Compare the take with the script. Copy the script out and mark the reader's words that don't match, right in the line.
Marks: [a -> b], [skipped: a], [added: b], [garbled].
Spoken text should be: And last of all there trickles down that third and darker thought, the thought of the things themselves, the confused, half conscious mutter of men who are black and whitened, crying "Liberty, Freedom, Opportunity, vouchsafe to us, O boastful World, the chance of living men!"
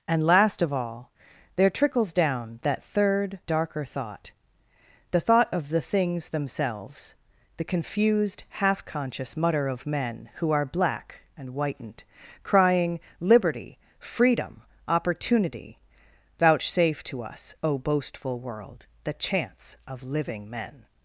And last of all there trickles down that third [skipped: and] darker thought, the thought of the things themselves, the confused, half conscious mutter of men who are black and whitened, crying "Liberty, Freedom, Opportunity, vouchsafe to us, O boastful World, the chance of living men!"